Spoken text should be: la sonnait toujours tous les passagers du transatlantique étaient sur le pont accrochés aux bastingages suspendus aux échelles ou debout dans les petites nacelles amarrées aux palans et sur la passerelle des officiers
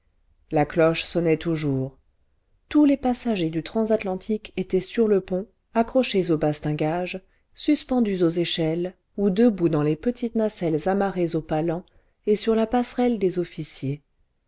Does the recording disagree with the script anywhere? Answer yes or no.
yes